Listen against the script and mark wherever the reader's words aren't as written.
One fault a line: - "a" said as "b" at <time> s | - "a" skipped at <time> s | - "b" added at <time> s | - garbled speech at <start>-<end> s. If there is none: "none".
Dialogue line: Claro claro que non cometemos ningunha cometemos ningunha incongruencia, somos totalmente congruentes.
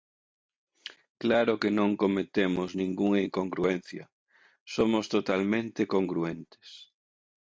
- "claro" skipped at 1.5 s
- "cometemos ningunha" skipped at 3.2 s